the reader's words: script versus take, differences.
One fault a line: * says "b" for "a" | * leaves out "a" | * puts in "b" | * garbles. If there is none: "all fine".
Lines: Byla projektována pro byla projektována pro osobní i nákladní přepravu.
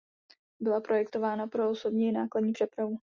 * leaves out "byla projektována pro"